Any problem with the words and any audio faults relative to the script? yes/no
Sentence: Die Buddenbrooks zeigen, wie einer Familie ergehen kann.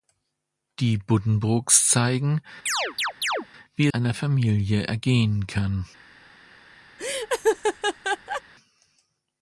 yes